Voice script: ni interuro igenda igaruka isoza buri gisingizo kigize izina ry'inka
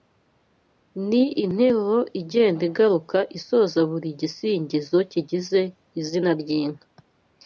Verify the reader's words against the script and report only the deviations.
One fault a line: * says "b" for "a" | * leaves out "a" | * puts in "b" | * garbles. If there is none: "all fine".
all fine